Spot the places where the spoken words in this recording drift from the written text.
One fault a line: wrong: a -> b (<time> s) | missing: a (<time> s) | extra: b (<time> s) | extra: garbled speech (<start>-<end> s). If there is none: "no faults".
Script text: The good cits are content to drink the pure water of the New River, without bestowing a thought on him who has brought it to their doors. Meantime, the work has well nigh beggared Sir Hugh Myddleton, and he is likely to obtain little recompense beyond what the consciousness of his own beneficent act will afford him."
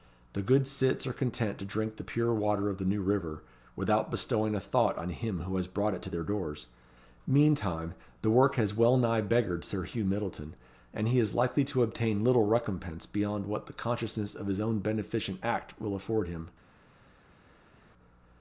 no faults